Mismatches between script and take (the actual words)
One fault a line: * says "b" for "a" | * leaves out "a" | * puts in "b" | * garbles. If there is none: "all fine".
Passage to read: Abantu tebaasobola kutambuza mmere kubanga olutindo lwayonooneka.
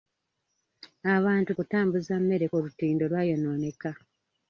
* leaves out "tebaasobola"
* leaves out "kubanga"